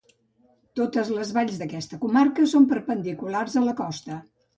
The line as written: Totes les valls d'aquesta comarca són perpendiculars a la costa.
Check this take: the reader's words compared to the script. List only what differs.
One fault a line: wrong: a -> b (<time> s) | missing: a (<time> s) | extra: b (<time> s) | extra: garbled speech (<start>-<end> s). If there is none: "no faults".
no faults